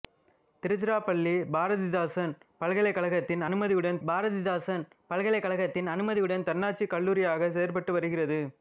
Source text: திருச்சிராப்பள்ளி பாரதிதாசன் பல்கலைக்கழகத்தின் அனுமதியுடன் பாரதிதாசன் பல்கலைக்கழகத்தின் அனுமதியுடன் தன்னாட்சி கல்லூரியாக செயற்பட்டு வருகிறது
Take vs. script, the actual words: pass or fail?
pass